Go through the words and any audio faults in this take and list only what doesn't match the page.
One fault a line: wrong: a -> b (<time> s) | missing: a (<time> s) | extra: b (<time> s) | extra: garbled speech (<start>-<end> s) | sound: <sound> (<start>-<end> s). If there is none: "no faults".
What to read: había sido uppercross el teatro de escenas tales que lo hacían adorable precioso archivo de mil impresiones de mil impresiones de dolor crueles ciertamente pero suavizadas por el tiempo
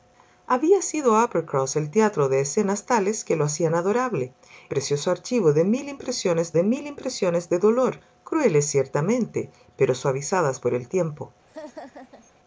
sound: laugh (11.5-12.3 s)